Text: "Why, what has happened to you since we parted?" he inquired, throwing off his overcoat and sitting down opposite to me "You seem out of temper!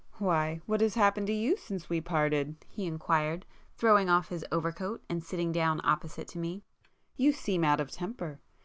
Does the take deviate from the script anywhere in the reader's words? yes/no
no